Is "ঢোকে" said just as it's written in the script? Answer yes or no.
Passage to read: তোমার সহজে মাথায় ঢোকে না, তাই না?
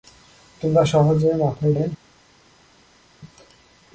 no